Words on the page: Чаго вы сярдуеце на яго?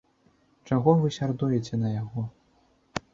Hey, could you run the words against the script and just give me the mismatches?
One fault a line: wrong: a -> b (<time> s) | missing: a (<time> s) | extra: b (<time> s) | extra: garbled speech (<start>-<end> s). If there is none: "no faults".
no faults